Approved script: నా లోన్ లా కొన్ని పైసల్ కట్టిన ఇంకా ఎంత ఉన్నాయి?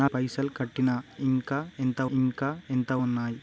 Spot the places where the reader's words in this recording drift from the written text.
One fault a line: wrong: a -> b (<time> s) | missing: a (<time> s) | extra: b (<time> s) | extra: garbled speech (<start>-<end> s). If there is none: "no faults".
wrong: లోన్ లా కొన్ని పైసల్ కట్టిన -> పైసల్ కట్టిన ఇంకా ఎంత (0.0 s)